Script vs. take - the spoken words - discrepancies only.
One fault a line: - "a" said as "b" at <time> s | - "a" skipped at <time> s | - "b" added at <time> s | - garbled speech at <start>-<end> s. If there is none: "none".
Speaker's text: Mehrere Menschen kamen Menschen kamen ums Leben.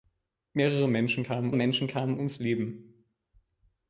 none